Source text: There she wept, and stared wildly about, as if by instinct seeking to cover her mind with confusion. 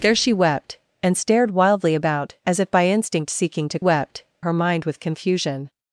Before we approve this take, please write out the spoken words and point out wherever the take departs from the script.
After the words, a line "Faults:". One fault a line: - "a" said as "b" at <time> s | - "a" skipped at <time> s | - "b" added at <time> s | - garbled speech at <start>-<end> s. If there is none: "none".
There she wept, and stared wildly about, as if by instinct seeking to wept her mind with confusion.
Faults:
- "cover" said as "wept" at 3.8 s